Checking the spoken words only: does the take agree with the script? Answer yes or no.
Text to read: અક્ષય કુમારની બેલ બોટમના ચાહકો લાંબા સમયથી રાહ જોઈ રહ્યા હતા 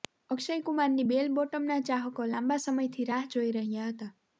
yes